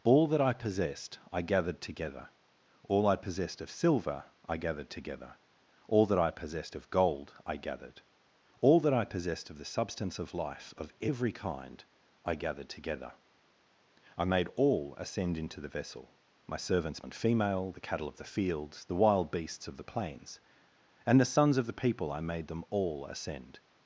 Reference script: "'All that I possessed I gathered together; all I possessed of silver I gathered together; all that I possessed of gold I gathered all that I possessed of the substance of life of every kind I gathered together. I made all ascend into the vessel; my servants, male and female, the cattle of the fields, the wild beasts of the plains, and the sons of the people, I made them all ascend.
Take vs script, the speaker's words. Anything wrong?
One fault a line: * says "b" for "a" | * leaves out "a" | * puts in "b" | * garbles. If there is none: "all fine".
* leaves out "male"